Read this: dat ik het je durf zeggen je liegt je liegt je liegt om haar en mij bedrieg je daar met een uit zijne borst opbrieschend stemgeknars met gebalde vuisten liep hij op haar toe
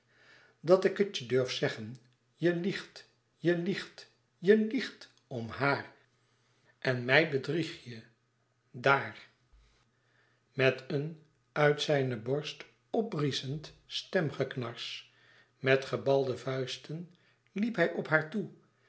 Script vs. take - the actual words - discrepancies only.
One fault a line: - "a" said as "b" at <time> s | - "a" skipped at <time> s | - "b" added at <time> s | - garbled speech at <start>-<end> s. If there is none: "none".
none